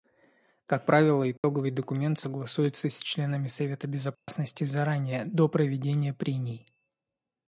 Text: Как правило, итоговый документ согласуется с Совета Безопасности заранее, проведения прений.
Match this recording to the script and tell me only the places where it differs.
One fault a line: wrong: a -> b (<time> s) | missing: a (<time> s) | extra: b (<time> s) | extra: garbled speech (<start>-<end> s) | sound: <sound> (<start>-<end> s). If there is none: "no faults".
sound: dropout (1.4-1.4 s)
extra: членами (3.0 s)
sound: dropout (4.1-4.3 s)
extra: до (5.3 s)